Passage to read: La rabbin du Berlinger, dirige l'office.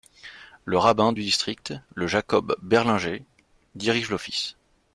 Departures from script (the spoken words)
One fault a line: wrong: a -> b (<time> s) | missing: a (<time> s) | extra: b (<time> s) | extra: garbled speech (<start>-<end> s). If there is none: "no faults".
wrong: La -> Le (0.7 s)
extra: district le Jacob (1.2 s)